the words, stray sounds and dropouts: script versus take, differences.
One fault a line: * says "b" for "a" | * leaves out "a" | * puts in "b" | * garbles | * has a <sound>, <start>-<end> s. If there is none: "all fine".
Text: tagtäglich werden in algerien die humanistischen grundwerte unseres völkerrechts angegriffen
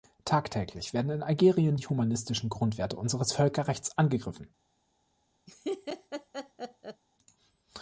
* has a laugh, 5.5-7.0 s